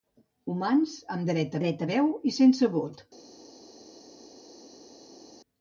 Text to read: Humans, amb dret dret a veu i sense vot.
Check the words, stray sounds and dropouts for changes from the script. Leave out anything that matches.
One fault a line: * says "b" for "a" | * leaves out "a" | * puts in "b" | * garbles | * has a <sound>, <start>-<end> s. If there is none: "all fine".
all fine